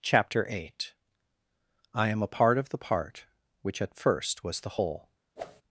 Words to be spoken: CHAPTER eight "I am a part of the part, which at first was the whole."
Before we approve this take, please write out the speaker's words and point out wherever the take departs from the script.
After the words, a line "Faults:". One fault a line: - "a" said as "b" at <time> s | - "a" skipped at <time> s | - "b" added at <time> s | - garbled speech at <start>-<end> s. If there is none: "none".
CHAPTER eight "I am a part of the part, which at first was the whole."
Faults:
none